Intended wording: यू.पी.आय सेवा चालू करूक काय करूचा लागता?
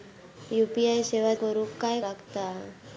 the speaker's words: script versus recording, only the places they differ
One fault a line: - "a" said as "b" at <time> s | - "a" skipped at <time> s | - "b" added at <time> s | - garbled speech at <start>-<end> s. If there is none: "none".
- "चालू" skipped at 1.3 s
- "करूचा" skipped at 2.0 s